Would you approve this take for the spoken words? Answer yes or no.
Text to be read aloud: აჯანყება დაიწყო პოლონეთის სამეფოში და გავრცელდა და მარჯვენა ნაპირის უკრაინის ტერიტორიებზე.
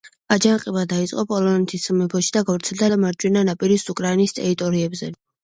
yes